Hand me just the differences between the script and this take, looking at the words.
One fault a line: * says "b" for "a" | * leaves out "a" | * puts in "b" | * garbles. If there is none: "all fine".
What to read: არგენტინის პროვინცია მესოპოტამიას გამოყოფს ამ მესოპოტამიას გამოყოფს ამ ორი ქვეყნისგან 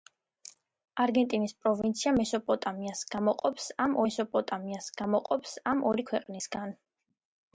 all fine